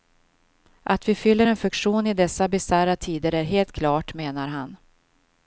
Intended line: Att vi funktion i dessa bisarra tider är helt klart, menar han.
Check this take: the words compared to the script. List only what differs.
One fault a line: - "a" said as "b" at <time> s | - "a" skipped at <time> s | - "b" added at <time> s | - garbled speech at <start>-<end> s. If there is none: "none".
- "fyller en" added at 1.1 s